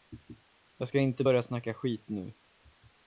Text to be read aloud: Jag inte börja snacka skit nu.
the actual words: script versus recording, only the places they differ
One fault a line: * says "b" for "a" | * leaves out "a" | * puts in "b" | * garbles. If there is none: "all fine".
* puts in "ska"